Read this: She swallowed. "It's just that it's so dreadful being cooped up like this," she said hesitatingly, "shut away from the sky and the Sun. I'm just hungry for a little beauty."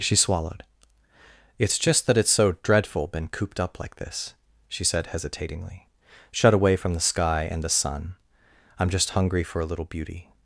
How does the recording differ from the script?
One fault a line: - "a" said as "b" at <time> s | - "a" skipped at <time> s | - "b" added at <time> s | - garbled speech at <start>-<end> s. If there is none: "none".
- "being" said as "been" at 3.1 s